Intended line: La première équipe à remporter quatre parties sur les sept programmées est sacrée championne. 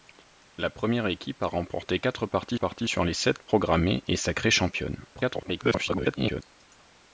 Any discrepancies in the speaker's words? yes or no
yes